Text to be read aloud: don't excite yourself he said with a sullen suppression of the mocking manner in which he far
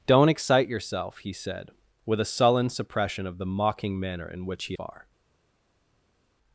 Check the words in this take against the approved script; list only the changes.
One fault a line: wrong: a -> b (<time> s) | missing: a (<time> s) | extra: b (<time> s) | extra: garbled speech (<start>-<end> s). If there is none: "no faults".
no faults